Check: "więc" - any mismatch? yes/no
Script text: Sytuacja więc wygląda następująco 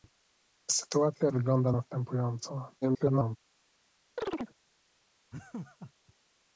yes